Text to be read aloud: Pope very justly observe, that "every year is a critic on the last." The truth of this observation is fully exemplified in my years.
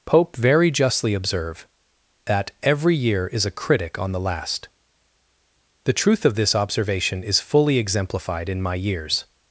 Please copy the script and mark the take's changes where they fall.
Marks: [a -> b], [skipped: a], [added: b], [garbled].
Pope very justly observe, that "every year is a critic on the last." The truth of this observation is fully exemplified in my years.